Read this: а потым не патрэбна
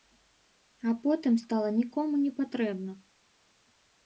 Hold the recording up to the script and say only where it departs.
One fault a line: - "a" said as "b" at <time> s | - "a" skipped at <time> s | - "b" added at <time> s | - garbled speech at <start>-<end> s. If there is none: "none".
- "стала нікому" added at 1.4 s